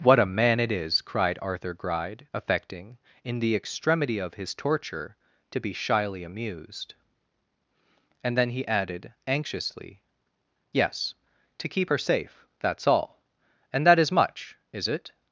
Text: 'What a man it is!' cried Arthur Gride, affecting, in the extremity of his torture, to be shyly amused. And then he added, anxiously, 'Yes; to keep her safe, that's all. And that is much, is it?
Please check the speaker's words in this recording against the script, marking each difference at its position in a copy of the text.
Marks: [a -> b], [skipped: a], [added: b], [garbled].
'What a man it is!' cried Arthur Gride, affecting, in the extremity of his torture, to be shyly amused. And then he added, anxiously, 'Yes; to keep her safe, that's all. And that is much, is it?